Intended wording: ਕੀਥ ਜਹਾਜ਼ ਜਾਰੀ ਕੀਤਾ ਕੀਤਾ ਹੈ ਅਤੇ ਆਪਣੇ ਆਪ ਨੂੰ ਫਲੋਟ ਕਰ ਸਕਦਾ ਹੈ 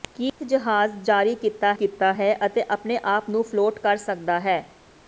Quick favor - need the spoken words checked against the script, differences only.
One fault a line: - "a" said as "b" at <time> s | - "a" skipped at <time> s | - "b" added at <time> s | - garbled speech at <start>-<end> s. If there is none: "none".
none